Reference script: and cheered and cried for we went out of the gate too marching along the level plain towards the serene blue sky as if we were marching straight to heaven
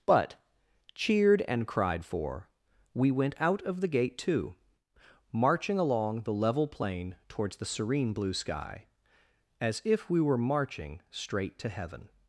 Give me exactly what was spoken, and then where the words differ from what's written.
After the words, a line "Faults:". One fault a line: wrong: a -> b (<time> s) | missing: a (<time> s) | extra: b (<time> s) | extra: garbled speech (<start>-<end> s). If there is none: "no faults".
but cheered and cried for we went out of the gate too marching along the level plain towards the serene blue sky as if we were marching straight to heaven
Faults:
wrong: and -> but (0.1 s)